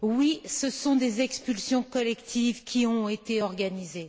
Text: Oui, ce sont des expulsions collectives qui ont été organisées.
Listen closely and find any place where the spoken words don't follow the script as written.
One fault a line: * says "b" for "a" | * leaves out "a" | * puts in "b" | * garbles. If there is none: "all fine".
all fine